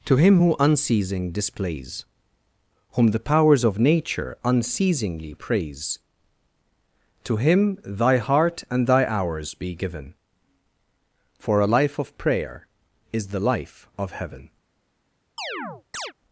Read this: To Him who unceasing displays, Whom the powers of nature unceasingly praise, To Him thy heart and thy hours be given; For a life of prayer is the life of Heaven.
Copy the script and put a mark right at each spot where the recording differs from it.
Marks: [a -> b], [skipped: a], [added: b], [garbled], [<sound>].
To Him who unceasing displays, Whom the powers of nature unceasingly praise, To Him thy heart and thy hours be given; For a life of prayer is the life of Heaven. [chirp]